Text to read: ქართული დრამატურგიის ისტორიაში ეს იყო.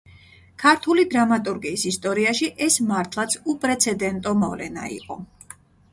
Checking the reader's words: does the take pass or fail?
fail